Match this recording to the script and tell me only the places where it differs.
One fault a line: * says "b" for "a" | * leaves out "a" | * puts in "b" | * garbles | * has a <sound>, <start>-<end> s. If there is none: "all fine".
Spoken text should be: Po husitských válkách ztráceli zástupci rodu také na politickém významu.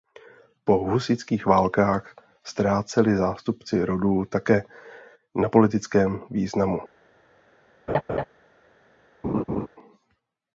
* has a laugh, 7.9-8.2 s
* has a laugh, 9.2-9.7 s